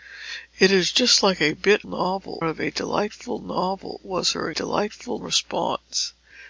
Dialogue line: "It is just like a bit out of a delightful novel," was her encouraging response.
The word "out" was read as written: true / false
false